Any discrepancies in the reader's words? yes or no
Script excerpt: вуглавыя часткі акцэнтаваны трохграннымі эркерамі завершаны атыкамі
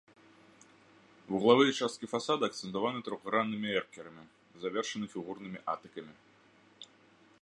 yes